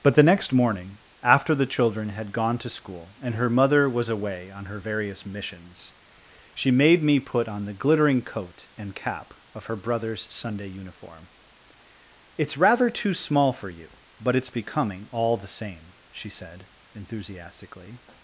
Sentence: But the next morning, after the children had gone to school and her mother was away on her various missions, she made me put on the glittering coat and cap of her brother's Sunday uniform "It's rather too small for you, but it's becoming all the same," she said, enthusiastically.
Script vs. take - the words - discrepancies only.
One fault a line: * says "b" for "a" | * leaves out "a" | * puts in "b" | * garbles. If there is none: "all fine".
all fine